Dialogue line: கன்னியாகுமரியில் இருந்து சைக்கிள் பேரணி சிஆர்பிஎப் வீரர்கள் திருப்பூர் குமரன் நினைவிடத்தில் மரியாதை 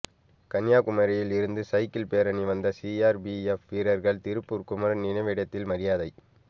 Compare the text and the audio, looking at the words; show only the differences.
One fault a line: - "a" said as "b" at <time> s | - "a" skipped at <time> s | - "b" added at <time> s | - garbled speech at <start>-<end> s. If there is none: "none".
- "வந்த" added at 2.5 s